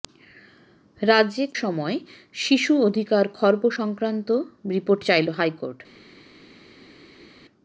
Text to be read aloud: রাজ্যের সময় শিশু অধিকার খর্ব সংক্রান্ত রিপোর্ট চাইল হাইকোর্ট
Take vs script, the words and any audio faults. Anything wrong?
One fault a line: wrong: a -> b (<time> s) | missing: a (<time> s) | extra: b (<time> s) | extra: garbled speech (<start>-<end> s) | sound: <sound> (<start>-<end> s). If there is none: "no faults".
no faults